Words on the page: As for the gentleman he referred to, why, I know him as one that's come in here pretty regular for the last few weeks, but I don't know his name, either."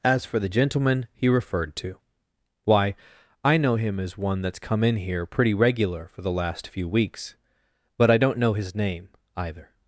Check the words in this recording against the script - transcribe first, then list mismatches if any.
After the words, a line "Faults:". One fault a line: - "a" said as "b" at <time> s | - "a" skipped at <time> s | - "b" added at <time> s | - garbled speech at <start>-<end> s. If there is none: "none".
As for the gentleman he referred to, why, I know him as one that's come in here pretty regular for the last few weeks, but I don't know his name, either."
Faults:
none